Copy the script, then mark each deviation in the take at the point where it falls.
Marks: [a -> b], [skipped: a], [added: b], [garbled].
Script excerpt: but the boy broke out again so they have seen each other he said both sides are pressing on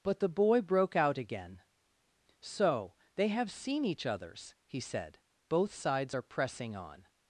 but the boy broke out again so they have seen each [other -> others] he said both sides are pressing on